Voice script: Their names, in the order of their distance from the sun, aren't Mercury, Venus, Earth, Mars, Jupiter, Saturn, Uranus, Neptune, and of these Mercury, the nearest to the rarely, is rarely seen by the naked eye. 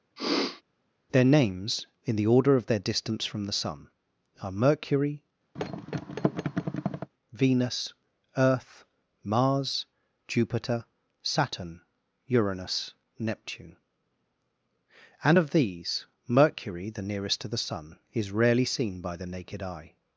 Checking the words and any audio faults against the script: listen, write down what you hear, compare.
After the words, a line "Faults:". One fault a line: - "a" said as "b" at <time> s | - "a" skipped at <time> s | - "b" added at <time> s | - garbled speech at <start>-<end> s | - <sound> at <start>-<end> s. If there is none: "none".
Their names, in the order of their distance from the sun, are Mercury, Venus, Earth, Mars, Jupiter, Saturn, Uranus, Neptune, and of these Mercury, the nearest to the sun, is rarely seen by the naked eye.
Faults:
- sniff at 0.2-0.6 s
- "aren't" said as "are" at 4.4 s
- thud at 5.5-7.1 s
- "rarely" said as "sun" at 17.6 s